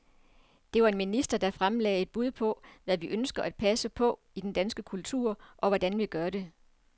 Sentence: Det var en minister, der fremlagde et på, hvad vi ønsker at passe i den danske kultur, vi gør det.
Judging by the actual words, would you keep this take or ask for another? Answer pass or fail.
fail